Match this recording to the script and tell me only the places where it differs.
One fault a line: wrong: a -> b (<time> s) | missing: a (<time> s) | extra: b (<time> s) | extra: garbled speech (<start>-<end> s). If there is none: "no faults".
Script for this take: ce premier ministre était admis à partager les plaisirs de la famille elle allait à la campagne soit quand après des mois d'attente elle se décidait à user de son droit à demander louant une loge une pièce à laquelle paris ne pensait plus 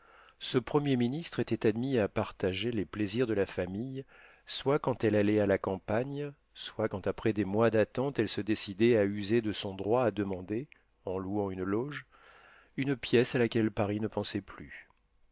extra: soit quand (4.5 s)
extra: en (11.0 s)